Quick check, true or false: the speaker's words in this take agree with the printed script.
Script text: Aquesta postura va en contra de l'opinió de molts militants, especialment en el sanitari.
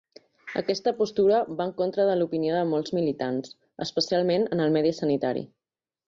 false